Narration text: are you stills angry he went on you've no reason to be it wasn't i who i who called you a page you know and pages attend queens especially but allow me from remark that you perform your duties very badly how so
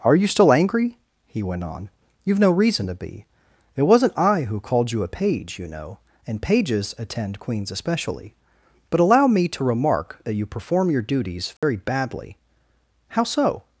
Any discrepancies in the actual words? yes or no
yes